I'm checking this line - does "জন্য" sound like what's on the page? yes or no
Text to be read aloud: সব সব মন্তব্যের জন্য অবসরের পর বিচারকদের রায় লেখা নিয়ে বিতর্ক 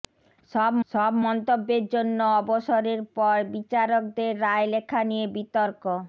yes